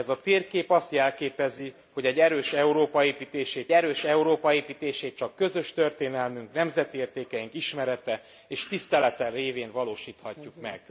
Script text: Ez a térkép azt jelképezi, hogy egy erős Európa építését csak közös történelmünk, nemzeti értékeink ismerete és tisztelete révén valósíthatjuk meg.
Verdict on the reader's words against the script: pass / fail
fail